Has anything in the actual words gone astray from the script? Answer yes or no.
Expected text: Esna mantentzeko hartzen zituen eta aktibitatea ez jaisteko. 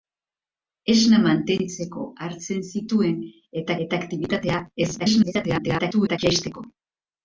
yes